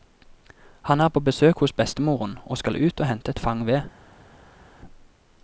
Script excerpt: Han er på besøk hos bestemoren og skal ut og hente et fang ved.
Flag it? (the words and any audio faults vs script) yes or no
no